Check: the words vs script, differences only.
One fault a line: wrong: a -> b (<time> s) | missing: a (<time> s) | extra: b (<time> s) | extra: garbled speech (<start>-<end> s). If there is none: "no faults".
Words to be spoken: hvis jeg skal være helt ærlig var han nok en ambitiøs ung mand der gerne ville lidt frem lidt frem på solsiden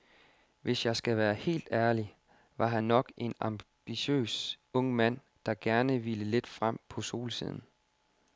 missing: lidt frem (6.8 s)